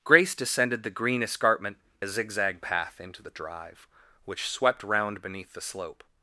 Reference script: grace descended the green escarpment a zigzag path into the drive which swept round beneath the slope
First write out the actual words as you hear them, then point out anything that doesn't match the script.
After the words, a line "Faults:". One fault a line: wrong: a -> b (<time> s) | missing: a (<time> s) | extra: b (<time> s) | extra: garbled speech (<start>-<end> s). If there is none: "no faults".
grace descended the green escarpment a zigzag path into the drive which swept round beneath the slope
Faults:
no faults